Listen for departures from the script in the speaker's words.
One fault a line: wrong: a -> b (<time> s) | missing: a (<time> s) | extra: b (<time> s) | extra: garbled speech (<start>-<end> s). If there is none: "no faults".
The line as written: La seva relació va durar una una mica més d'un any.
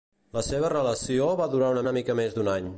no faults